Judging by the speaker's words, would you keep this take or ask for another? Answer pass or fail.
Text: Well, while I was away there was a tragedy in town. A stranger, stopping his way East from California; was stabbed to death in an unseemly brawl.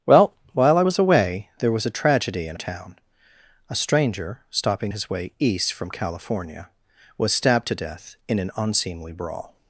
pass